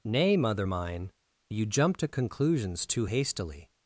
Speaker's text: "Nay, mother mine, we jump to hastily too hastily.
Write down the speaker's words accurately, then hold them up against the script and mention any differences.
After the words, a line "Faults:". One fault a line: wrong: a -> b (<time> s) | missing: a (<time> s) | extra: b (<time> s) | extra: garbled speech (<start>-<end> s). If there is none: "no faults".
"Nay, mother mine, you jump to conclusions too hastily.
Faults:
wrong: we -> you (1.5 s)
wrong: hastily -> conclusions (2.1 s)